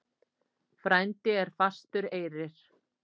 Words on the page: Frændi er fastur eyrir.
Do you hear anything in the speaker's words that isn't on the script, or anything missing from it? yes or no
no